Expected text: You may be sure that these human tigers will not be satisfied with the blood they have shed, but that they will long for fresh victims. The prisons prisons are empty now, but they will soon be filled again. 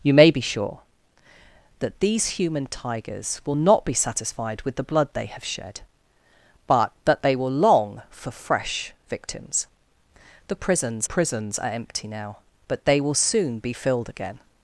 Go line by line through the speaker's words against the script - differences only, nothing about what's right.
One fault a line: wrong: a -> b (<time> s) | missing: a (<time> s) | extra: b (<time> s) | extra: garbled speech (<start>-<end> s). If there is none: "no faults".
no faults